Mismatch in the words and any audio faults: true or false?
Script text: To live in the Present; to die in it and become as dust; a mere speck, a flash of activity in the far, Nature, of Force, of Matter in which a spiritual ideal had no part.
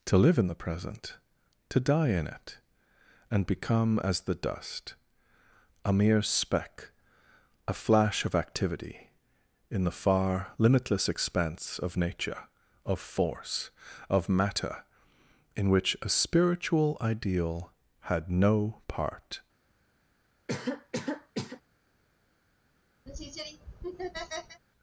true